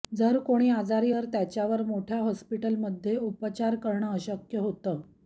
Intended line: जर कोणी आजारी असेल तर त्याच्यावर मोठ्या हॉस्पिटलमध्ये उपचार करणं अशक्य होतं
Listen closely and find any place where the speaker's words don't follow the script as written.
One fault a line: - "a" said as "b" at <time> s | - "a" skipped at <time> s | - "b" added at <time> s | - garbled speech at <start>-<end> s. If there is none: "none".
- "असेल" skipped at 1.1 s